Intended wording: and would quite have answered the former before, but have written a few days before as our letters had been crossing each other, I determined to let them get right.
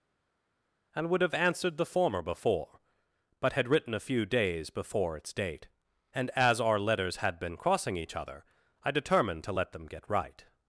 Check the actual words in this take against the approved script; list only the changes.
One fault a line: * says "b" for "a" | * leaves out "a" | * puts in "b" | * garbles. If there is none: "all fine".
* leaves out "quite"
* says "had" for "have"
* puts in "its date and"